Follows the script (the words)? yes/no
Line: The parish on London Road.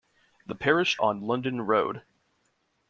yes